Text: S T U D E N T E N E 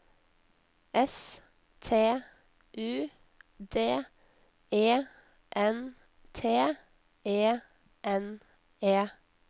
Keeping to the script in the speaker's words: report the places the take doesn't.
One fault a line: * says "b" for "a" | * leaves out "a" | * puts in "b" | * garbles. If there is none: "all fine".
all fine